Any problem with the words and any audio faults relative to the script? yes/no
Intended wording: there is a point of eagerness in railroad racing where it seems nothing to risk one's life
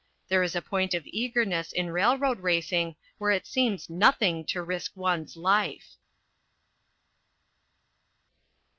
no